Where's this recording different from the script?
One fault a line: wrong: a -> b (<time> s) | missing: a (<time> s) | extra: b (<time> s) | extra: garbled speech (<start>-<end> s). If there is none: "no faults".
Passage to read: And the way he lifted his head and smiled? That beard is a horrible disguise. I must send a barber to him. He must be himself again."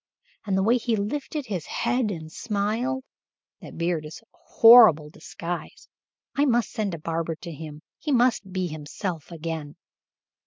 no faults